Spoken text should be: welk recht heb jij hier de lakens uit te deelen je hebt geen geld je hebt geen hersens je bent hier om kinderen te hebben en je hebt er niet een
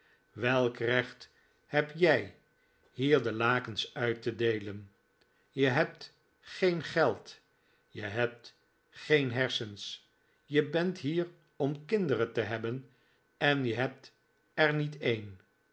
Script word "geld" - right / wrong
right